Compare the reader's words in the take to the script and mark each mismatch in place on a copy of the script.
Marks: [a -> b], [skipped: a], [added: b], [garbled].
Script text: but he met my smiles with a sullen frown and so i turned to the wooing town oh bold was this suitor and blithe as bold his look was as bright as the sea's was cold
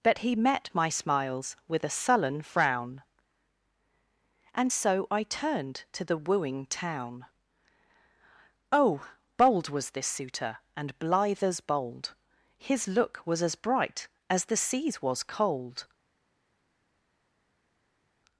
but he met my smiles with a sullen frown and so i turned to the wooing town oh bold was this suitor and blithe as bold his look was as bright as the sea's was cold